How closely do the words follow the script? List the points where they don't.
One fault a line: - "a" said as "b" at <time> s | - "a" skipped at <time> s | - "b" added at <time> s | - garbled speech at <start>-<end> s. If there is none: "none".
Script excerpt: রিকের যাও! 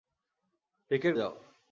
none